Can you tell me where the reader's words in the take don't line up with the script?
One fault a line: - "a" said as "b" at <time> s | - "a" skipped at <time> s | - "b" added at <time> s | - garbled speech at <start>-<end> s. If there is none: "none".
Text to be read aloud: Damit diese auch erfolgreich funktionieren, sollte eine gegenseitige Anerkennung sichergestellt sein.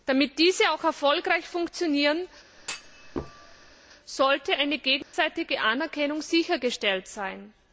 none